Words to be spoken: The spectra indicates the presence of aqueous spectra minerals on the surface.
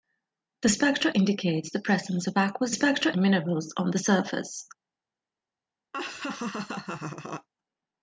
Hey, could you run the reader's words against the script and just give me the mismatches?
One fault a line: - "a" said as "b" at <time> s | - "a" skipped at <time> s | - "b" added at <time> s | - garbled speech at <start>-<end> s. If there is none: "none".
none